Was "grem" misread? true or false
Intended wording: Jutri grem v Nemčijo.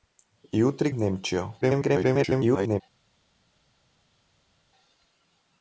true